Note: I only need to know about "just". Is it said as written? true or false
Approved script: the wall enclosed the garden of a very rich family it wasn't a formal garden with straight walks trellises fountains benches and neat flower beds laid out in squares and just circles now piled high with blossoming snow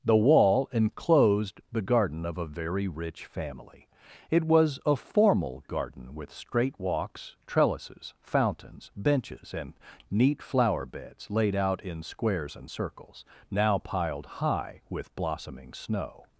false